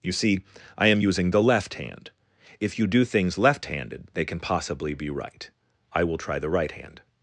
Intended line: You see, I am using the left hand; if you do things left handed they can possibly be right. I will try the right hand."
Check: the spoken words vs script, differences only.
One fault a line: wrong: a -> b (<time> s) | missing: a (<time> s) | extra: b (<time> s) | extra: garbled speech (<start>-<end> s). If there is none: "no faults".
no faults